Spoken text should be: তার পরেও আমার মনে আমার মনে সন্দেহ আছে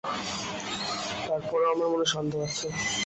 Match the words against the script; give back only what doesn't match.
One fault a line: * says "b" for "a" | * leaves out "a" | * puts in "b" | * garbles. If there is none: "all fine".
* leaves out "আমার মনে"